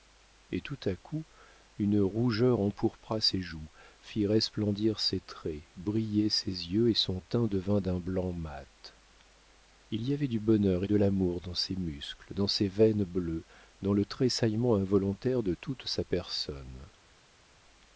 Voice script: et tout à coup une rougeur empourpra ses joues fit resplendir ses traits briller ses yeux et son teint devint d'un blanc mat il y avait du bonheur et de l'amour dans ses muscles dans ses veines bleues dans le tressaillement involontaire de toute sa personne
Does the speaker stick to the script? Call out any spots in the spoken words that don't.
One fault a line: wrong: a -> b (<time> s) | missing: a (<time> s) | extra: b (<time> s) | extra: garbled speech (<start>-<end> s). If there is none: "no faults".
no faults